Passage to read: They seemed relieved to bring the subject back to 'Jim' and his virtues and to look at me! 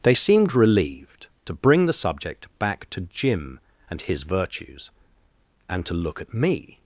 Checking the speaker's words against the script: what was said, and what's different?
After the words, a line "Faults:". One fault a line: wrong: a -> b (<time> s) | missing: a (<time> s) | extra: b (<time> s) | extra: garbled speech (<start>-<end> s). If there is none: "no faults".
They seemed relieved to bring the subject back to 'Jim' and his virtues and to look at me!
Faults:
no faults